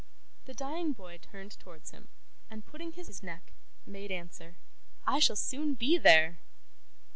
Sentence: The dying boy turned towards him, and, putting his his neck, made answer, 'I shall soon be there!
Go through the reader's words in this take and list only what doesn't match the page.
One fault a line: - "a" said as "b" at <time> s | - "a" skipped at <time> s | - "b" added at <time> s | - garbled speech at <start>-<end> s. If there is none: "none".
none